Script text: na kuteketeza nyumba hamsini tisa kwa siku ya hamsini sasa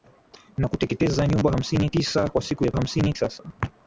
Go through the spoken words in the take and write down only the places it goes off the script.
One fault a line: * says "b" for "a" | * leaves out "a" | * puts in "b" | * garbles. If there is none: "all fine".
all fine